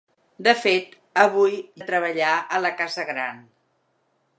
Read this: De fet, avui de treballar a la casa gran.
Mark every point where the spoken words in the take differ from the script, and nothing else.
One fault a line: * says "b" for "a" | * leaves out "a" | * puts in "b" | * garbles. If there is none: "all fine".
all fine